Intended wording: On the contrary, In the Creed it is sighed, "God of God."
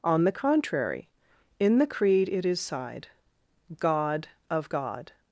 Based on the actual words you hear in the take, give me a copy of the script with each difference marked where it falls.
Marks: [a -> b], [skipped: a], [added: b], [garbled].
On the contrary, In the Creed it is sighed, "God of God."